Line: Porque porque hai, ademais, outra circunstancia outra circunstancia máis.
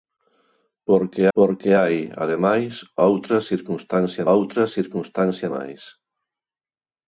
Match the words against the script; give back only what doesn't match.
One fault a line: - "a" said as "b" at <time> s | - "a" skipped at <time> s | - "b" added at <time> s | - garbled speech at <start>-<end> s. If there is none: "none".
none